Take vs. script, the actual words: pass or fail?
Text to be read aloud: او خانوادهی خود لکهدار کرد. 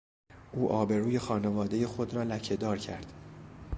fail